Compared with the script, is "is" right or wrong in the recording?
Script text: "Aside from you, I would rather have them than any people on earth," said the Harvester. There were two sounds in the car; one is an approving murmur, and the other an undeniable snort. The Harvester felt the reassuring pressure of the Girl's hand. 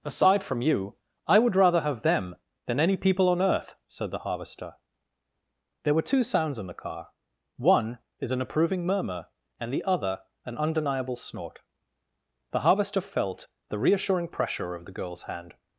right